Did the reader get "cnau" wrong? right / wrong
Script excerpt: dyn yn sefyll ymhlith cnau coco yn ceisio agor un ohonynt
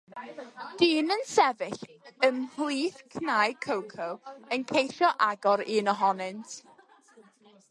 right